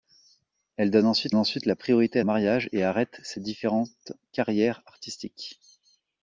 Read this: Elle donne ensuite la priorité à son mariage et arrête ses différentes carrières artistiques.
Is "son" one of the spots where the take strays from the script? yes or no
yes